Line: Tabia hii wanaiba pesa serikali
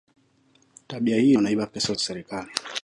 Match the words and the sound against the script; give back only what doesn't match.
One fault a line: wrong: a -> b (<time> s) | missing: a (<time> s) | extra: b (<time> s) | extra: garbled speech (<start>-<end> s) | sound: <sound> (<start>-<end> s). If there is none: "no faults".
no faults